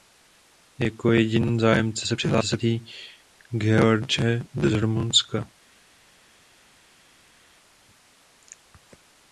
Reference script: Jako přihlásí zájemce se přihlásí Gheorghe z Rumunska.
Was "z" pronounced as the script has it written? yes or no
yes